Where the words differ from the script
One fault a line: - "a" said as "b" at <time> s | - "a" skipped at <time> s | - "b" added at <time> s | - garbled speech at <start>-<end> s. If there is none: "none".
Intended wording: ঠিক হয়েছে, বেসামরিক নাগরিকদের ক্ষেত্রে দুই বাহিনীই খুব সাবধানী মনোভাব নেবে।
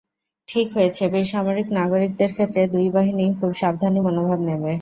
none